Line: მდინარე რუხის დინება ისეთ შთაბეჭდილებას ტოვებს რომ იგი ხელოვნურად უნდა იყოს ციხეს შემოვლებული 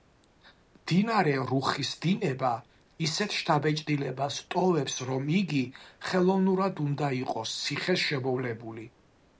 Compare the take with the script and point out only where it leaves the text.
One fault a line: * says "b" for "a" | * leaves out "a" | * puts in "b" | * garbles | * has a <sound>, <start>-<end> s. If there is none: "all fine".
all fine